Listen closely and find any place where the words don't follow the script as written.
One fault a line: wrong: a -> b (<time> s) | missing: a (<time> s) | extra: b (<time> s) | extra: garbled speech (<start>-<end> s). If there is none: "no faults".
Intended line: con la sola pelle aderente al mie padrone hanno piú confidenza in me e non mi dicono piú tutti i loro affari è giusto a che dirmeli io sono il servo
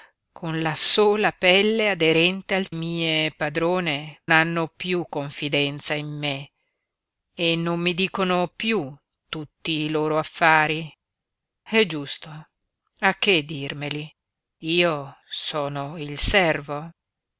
no faults